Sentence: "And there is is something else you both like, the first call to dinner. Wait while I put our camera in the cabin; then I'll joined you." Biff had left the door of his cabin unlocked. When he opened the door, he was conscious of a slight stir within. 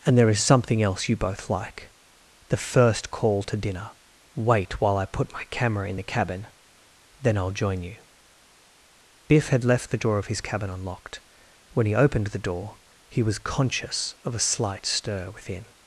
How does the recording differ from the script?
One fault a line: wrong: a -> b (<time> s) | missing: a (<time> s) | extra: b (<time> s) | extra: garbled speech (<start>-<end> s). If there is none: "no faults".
missing: is (0.4 s)
wrong: our -> my (5.3 s)
wrong: joined -> join (7.5 s)